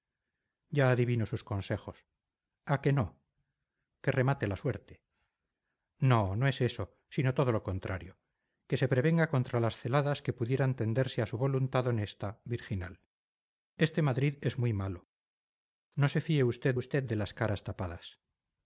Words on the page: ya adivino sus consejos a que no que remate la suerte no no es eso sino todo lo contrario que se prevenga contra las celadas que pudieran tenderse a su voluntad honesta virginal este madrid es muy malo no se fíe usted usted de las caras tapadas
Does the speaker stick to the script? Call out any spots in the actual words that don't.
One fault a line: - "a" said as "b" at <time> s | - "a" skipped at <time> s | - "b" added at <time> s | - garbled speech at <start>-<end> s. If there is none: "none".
none